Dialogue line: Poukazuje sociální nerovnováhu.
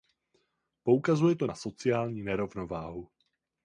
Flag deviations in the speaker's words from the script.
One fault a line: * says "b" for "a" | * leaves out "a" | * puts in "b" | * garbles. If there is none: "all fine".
* puts in "to na"